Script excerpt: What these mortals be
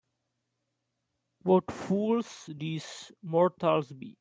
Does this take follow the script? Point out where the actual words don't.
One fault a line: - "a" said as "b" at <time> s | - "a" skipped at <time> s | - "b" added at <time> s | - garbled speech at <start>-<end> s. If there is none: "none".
- "fools" added at 1.7 s